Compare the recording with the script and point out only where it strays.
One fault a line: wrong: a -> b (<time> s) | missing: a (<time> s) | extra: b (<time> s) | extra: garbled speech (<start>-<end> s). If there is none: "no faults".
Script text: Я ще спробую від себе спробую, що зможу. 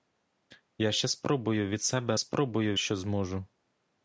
no faults